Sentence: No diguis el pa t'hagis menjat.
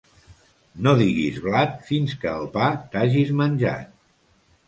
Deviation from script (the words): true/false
true